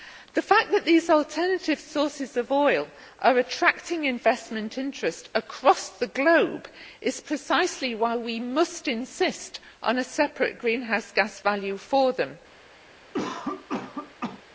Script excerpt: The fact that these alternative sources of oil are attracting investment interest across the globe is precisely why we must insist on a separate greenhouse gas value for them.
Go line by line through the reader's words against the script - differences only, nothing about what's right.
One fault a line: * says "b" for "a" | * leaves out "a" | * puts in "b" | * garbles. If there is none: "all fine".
all fine